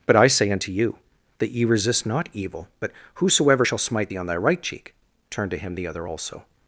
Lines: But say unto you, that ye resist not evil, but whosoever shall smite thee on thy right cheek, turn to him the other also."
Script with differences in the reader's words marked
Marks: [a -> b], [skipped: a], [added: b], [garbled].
But [added: I] say unto you, that ye resist not evil, but whosoever shall smite thee on thy right cheek, turn to him the other also."